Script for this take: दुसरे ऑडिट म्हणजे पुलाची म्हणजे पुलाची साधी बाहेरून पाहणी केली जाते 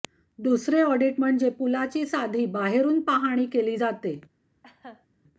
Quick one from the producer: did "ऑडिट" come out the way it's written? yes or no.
yes